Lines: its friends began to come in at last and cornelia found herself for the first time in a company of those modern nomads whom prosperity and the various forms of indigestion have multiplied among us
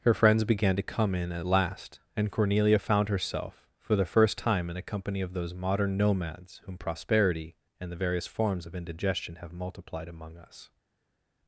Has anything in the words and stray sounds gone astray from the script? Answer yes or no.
yes